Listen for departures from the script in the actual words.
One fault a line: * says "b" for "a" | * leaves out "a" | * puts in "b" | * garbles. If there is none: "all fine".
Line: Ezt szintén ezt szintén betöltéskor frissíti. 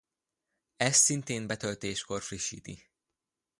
* leaves out "ezt szintén"